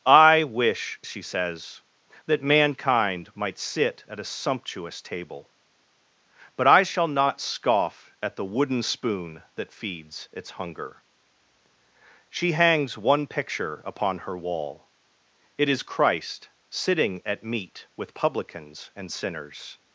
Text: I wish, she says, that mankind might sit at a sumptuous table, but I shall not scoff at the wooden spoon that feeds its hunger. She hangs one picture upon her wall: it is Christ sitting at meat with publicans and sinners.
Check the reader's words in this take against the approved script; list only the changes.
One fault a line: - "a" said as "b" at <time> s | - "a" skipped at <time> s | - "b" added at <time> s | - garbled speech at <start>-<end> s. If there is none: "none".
none